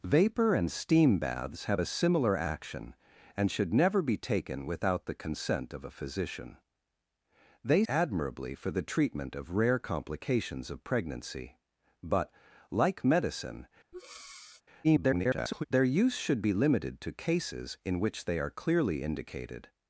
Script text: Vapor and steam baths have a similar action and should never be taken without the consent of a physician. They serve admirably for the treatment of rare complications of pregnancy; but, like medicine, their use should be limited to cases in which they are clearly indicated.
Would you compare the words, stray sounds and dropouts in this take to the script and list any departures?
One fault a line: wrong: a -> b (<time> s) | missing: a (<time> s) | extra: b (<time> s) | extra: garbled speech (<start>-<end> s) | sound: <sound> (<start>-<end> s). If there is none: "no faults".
missing: serve (7.8 s)
sound: breath (13.9-14.6 s)
extra: garbled speech (14.8-15.6 s)